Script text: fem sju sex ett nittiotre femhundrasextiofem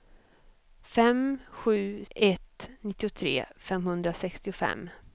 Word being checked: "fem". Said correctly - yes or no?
yes